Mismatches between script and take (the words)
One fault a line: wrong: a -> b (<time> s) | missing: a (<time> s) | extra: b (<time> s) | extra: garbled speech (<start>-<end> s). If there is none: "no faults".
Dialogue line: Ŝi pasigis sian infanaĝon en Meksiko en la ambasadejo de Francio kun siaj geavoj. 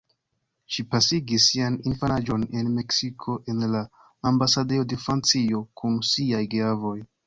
no faults